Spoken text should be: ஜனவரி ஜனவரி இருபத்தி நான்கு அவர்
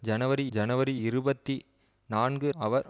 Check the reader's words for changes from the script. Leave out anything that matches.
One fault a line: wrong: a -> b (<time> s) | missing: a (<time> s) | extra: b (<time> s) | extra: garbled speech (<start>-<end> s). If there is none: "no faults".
no faults